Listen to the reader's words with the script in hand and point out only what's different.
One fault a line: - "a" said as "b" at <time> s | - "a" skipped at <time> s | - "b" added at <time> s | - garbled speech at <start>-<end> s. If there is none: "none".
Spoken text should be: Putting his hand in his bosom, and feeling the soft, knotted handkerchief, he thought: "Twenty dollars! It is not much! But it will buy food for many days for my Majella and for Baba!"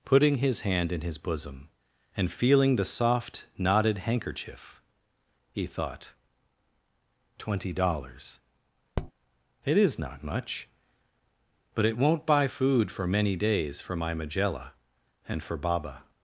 - "will" said as "won't" at 12.0 s